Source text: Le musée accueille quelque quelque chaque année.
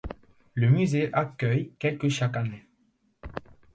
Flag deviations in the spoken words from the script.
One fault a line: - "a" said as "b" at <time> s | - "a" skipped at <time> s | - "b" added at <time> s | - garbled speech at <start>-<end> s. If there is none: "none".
- "quelque" skipped at 2.1 s